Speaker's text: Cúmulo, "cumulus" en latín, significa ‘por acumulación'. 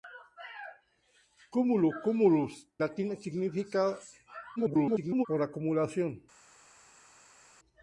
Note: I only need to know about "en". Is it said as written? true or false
false